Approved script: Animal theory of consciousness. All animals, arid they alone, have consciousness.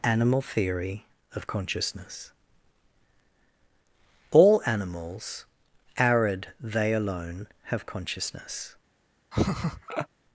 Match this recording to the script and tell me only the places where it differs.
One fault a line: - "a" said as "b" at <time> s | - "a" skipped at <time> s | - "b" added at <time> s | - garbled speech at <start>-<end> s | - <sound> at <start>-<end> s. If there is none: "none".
- laugh at 9.3-10.1 s